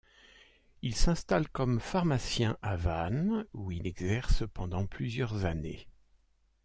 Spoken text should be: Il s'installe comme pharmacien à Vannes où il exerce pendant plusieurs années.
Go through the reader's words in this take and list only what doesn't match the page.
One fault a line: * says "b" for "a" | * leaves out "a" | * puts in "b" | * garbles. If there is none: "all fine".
all fine